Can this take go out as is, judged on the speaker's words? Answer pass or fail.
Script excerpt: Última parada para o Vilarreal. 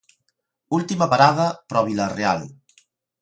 pass